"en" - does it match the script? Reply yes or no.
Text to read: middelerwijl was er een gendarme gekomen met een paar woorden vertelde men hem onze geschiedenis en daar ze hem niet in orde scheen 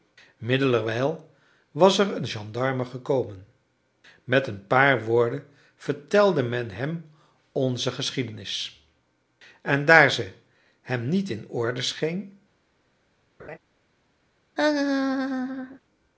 yes